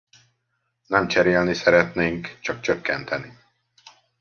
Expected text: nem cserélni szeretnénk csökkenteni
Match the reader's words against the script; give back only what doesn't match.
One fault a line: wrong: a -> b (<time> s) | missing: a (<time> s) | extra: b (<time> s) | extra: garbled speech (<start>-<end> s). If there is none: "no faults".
extra: csak (2.4 s)